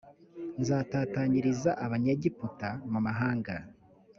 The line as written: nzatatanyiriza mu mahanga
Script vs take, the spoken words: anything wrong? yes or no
yes